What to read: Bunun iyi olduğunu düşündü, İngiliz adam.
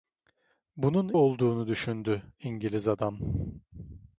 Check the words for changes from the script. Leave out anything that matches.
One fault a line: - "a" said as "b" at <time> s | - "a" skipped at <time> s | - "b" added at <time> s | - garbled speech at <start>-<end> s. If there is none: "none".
- "iyi" skipped at 1.1 s